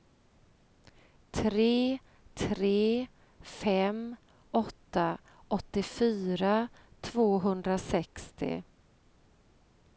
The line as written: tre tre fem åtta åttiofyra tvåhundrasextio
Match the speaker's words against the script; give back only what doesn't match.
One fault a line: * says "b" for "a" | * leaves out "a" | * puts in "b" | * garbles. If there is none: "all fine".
all fine